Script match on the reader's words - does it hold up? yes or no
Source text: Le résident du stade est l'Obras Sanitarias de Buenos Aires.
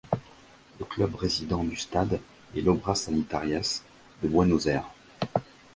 no